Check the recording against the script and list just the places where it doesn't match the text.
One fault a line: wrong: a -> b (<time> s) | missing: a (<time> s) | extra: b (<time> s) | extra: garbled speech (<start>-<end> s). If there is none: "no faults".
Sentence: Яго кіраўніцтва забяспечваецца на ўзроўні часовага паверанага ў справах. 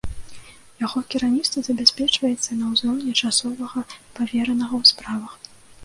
no faults